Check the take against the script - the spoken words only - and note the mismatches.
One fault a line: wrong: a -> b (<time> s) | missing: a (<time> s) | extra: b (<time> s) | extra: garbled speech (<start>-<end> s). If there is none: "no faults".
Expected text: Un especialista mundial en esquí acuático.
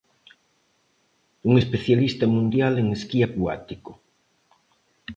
no faults